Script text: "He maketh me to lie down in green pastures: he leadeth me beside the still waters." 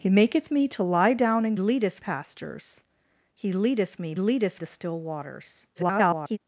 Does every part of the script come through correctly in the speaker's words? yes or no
no